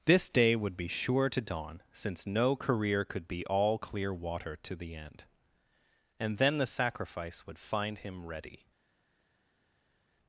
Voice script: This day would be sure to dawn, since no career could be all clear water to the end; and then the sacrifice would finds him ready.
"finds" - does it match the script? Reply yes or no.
no